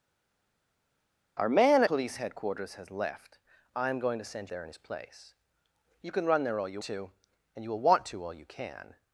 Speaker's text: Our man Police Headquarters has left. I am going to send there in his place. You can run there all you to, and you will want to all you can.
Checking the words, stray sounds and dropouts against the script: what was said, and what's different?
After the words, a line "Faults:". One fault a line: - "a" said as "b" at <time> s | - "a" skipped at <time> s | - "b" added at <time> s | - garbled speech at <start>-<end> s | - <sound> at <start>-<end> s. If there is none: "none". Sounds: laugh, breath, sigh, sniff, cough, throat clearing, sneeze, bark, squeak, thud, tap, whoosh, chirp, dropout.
Our man Police Headquarters has left. I am going to send there in his place. You can run there all you to, and you will want to all you can.
Faults:
none